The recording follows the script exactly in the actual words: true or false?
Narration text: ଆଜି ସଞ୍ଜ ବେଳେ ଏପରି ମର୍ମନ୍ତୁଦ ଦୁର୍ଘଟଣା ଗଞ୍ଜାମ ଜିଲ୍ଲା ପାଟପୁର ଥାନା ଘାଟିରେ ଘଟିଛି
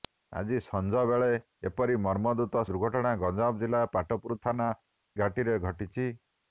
true